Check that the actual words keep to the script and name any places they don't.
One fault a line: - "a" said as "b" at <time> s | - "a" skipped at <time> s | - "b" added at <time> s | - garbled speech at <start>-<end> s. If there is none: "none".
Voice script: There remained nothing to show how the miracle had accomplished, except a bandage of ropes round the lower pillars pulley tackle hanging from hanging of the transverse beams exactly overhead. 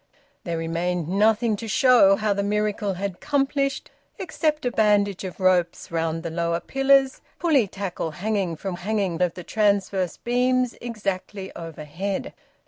none